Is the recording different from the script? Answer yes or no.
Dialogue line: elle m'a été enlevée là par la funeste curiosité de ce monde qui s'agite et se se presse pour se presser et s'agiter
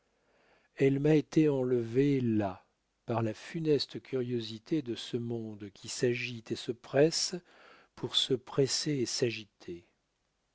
yes